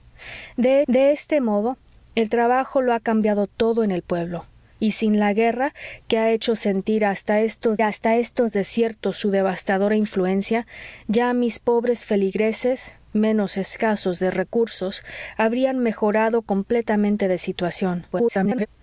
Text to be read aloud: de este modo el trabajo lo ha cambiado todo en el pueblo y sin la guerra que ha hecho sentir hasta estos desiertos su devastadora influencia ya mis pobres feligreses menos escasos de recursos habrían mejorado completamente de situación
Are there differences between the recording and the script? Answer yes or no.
yes